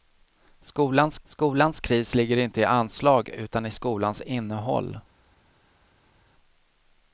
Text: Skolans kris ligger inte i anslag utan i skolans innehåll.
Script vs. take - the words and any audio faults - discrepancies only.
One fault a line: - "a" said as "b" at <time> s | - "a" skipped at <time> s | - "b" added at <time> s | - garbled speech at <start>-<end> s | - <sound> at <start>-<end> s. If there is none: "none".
- "skolans" added at 1.2 s